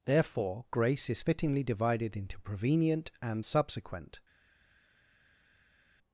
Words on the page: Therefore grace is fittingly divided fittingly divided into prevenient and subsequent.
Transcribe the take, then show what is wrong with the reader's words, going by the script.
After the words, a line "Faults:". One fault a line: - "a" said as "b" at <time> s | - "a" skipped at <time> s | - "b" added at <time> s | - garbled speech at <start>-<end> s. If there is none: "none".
Therefore grace is fittingly divided into prevenient and subsequent.
Faults:
- "fittingly divided" skipped at 2.2 s